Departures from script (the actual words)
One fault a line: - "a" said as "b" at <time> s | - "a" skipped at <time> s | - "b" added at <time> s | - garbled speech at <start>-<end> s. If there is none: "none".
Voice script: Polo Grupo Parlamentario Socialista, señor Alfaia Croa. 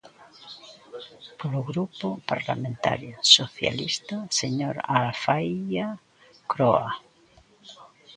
none